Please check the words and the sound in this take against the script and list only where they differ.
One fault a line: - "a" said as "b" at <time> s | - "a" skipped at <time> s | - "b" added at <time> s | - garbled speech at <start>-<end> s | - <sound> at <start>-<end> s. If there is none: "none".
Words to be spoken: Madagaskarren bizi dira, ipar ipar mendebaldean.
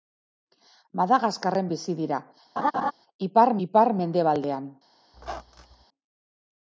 - laugh at 2.6-2.9 s
- squeak at 5.1-5.8 s